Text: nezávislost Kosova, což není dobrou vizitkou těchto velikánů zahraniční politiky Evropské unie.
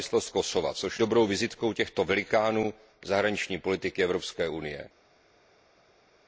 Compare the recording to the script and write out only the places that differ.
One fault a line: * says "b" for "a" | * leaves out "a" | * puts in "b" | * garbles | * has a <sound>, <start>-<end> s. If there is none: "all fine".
* leaves out "není"